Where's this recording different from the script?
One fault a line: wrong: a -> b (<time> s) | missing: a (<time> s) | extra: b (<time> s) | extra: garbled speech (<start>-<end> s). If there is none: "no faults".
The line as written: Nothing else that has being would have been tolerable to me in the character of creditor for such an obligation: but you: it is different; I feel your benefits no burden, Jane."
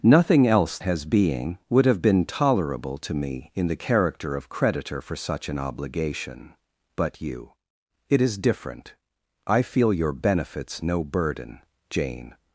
missing: that (0.8 s)